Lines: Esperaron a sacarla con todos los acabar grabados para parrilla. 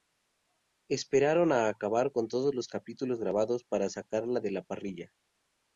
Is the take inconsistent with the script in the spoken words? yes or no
yes